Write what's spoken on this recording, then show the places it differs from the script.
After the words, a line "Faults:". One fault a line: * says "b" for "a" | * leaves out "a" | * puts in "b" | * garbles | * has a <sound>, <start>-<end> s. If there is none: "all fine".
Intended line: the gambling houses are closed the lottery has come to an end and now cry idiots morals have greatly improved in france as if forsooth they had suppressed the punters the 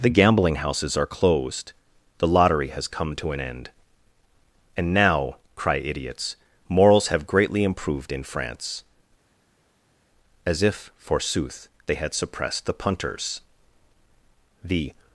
the gambling houses are closed the lottery has come to an end and now cry idiots morals have greatly improved in france as if forsooth they had suppressed the punters the
Faults:
all fine